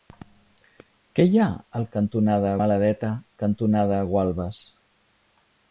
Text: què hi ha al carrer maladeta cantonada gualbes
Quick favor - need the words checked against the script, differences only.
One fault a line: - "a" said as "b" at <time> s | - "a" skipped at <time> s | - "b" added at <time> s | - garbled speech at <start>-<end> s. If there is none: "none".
- "carrer" said as "cantonada" at 2.0 s